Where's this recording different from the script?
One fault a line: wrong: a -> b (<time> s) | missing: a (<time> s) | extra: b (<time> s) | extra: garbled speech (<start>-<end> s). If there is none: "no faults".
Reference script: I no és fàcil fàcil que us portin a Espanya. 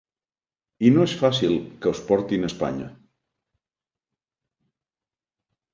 missing: fàcil (1.5 s)